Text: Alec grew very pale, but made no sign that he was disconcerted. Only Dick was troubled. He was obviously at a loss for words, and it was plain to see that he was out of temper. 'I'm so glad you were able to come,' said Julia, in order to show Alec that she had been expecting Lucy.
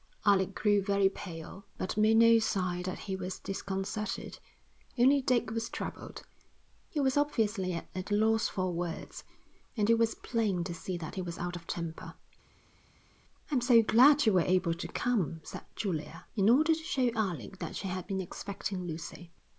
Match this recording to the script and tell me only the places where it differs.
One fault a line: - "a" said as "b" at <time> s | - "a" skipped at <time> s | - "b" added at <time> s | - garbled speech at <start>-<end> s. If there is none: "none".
none